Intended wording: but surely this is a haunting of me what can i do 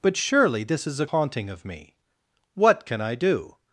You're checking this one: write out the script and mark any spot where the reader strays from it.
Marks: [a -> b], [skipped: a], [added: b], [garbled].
but surely this is a haunting of me what can i do